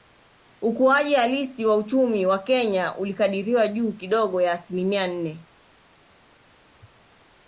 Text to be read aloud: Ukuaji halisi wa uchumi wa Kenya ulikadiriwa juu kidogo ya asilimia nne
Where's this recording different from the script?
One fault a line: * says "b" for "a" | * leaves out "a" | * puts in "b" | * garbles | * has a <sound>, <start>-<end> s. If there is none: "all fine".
all fine